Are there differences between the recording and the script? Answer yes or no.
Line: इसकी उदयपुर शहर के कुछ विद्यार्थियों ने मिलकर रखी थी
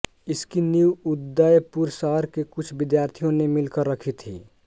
yes